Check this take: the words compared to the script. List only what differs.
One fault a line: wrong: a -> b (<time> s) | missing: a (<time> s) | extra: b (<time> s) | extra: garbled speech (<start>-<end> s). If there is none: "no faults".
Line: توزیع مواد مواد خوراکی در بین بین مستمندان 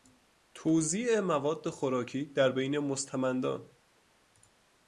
missing: مواد (1.7 s)
missing: بین (2.8 s)